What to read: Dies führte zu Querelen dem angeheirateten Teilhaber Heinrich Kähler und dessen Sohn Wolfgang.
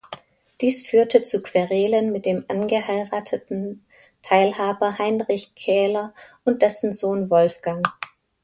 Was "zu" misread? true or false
false